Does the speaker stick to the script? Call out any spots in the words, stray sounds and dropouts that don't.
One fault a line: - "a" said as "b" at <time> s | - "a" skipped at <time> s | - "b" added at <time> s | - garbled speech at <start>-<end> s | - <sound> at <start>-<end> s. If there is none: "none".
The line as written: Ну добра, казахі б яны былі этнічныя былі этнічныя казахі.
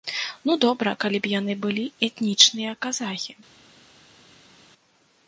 - "казахі" said as "калі" at 1.0 s
- "былі этнічныя" skipped at 2.7 s